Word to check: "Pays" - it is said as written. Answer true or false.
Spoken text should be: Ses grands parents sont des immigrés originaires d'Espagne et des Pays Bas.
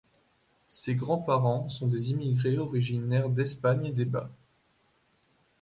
false